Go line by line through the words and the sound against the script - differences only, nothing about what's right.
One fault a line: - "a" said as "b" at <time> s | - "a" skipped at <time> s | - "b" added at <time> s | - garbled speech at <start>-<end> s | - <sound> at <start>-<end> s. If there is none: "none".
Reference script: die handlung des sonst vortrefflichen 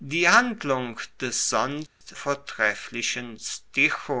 - dropout at 1.9-2.0 s